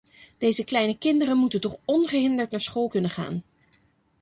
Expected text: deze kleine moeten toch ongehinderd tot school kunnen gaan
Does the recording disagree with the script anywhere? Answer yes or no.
yes